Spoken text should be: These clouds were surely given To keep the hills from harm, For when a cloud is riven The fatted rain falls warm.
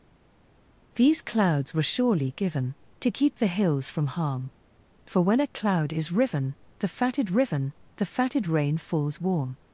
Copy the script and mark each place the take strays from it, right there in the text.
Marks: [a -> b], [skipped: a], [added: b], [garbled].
These clouds were surely given To keep the hills from harm, For when a cloud is riven The fatted [added: riven The fatted] rain falls warm.